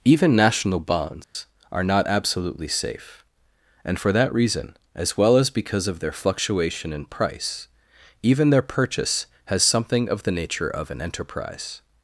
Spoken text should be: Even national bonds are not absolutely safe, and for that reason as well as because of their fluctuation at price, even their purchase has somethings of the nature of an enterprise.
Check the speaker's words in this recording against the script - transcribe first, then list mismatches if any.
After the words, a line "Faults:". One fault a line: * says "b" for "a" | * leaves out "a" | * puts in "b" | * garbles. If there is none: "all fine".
Even national bonds are not absolutely safe, and for that reason as well as because of their fluctuation in price, even their purchase has something of the nature of an enterprise.
Faults:
* says "in" for "at"
* says "something" for "somethings"